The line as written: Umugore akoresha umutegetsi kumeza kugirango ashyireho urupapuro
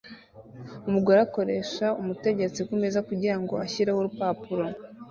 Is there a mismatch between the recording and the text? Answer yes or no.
no